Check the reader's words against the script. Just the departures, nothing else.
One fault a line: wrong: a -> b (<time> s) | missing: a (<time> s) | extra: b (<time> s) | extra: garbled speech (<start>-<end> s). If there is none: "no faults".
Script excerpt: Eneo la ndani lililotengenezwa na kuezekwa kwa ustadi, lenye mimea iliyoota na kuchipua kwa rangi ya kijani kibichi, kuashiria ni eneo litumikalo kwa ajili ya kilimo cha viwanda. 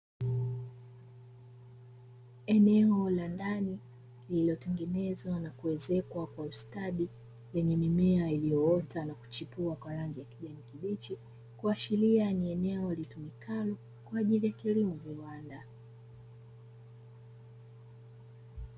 missing: cha (15.0 s)